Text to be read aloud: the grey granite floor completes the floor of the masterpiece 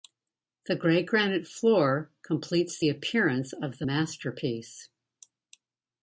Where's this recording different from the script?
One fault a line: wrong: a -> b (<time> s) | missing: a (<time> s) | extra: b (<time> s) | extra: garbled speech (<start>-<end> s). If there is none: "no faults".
wrong: floor -> appearance (2.9 s)